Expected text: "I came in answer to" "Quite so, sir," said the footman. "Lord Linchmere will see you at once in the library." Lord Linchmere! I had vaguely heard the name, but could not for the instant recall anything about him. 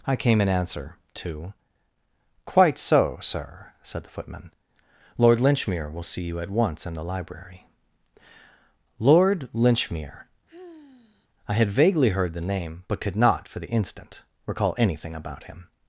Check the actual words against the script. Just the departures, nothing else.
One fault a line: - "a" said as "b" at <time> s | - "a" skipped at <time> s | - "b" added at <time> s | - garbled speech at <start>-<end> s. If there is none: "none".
none